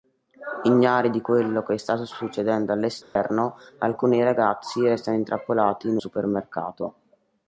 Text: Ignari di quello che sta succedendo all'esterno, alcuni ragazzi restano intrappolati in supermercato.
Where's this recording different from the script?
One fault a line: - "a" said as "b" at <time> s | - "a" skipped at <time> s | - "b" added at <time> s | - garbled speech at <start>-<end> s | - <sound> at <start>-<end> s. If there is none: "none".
- dropout at 3.0-3.2 s